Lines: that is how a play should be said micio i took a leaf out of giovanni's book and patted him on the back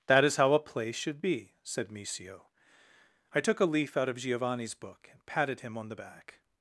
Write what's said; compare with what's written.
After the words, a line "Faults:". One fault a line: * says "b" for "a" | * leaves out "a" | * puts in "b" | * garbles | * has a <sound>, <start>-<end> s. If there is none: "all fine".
that is how a play should be said micio i took a leaf out of giovanni's book and patted him on the back
Faults:
all fine